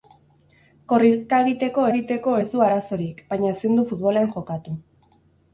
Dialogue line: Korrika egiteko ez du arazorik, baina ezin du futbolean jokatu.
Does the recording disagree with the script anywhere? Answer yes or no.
yes